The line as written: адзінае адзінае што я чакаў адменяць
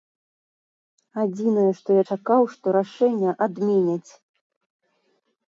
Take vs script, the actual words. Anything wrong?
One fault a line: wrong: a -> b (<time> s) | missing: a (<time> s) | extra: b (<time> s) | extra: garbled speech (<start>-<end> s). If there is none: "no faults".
missing: адзінае (1.7 s)
extra: што рашэнне (2.5 s)